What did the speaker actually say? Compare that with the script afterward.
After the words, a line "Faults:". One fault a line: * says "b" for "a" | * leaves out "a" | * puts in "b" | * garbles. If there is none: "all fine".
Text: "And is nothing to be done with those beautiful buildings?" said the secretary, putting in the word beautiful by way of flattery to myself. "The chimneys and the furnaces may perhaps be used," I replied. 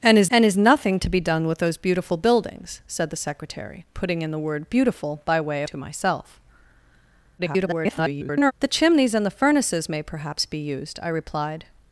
"And is and is nothing to be done with those beautiful buildings?" said the secretary, putting in the word beautiful by way of to myself. [garbled] "The chimneys and the furnaces may perhaps be used," I replied.
Faults:
* puts in "and is"
* leaves out "flattery"
* garbles